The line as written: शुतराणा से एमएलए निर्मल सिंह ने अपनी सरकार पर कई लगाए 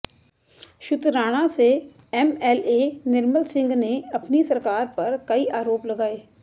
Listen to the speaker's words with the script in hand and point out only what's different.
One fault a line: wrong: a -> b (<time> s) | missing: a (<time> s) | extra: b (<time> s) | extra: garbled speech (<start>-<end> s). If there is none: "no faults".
extra: आरोप (5.6 s)